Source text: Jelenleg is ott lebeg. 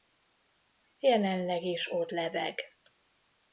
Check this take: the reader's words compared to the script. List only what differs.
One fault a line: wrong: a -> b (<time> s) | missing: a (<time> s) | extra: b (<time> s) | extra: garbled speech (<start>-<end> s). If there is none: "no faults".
no faults